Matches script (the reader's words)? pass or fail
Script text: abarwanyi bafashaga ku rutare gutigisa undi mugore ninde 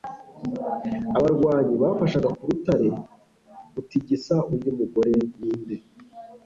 pass